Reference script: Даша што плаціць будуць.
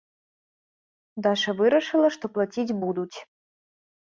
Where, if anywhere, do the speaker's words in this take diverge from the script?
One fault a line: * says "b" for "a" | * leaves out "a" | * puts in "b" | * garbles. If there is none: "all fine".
* puts in "вырашыла"